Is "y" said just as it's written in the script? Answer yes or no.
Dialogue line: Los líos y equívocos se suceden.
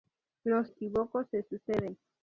no